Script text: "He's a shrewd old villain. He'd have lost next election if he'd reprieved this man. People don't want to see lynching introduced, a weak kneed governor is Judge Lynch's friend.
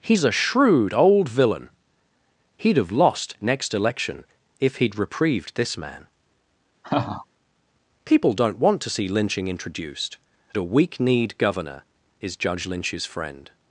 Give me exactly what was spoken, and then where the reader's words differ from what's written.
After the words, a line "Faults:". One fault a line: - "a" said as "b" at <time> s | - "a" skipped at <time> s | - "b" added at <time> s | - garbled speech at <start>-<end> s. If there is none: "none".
"He's a shrewd old villain. He'd have lost next election if he'd reprieved this man. People don't want to see lynching introduced, a weak kneed governor is Judge Lynch's friend.
Faults:
none